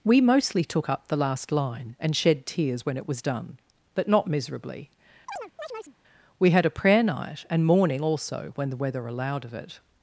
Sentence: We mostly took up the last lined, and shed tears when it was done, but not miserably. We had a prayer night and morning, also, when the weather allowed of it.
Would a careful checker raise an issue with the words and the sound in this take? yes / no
yes